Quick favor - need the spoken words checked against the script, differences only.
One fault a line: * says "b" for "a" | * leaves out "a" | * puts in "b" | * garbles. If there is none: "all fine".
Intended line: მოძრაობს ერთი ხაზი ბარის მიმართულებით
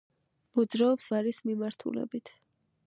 * leaves out "ერთი ხაზი"